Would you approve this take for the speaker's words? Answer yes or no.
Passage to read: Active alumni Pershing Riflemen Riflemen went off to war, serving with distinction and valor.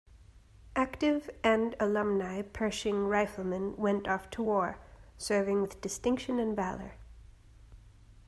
no